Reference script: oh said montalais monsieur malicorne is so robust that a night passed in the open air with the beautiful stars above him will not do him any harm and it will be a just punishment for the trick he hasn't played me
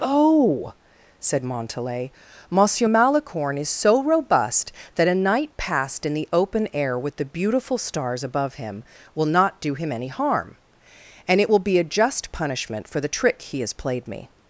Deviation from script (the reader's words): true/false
true